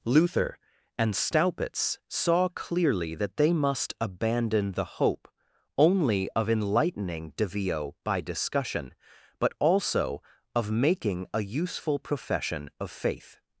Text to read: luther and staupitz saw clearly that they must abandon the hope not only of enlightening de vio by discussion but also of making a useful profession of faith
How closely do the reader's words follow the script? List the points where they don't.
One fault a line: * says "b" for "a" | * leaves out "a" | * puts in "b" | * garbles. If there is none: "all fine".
* leaves out "not"